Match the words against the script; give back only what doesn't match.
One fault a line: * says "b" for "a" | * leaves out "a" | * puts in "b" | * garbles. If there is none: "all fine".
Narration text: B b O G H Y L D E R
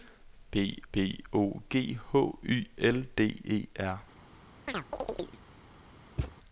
all fine